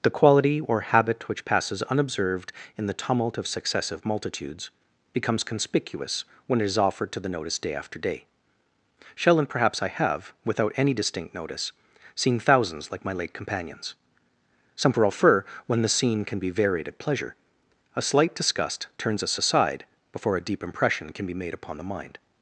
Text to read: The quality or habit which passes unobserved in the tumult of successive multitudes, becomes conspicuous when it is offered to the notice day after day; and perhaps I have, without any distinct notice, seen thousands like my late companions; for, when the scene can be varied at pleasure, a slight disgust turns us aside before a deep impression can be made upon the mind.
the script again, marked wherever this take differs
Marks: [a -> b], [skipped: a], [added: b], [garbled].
The quality or habit which passes unobserved in the tumult of successive multitudes, becomes conspicuous when it is offered to the notice day after day; [added: shall] and perhaps I have, without any distinct notice, seen thousands like my late companions; [for, -> some prefer] when the scene can be varied at pleasure, a slight disgust turns us aside before a deep impression can be made upon the mind.